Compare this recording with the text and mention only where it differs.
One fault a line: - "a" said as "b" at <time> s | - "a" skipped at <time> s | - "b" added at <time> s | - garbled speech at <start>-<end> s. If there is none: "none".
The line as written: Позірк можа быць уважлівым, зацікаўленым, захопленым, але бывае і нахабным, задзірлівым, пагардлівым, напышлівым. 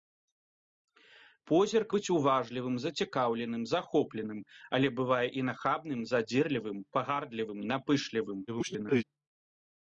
- "можа" skipped at 1.9 s
- garbled speech at 8.5-9.0 s